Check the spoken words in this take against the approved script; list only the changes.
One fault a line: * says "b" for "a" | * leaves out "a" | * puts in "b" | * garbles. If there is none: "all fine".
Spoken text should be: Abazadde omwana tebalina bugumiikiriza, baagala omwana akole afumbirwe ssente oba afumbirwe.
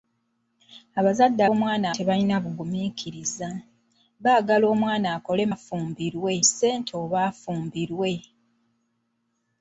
all fine